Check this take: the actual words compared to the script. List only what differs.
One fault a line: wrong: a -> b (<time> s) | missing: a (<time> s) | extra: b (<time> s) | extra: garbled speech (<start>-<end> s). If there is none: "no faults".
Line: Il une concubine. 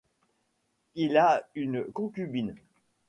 extra: a (1.1 s)